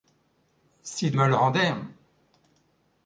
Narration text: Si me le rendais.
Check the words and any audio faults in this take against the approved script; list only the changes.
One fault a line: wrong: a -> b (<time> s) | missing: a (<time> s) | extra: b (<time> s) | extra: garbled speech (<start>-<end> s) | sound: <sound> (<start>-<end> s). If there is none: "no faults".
no faults